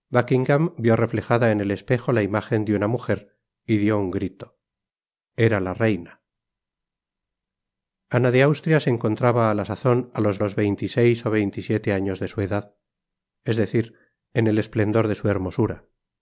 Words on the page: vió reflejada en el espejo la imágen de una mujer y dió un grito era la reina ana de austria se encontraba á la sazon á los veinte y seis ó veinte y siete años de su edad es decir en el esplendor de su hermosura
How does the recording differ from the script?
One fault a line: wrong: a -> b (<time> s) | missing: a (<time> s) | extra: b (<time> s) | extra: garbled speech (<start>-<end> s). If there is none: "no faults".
extra: los (10.4 s)